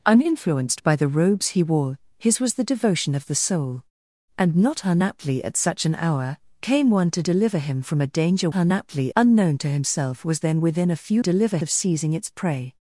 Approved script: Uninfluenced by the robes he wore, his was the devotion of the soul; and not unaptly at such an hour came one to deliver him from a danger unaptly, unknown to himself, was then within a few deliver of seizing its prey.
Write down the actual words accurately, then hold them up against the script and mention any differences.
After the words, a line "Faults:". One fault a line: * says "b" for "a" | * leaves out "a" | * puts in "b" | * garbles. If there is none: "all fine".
Uninfluenced by the robes he wore, his was the devotion of the soul; and not unaptly at such an hour came one to deliver him from a danger unaptly, unknown to himself, was then within a few deliver of seizing its prey.
Faults:
all fine